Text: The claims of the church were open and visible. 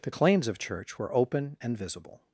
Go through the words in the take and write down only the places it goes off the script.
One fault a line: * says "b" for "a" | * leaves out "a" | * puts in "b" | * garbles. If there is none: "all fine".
* leaves out "the"